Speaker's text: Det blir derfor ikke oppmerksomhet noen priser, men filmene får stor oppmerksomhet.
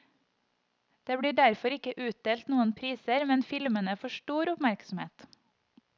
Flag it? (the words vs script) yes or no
yes